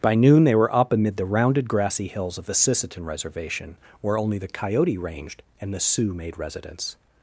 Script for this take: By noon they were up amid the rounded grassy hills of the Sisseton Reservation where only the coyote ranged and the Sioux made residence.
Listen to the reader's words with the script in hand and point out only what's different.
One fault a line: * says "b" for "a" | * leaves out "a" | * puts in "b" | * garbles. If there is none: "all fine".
all fine